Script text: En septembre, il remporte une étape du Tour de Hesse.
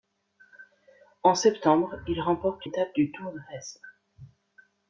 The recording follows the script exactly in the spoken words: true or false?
false